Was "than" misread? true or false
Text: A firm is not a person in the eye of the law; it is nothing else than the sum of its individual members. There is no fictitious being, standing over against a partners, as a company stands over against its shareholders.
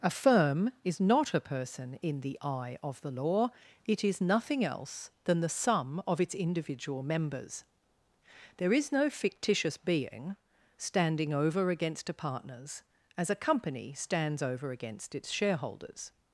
false